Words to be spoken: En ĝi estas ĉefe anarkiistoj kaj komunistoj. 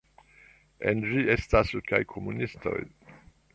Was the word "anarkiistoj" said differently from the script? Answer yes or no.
yes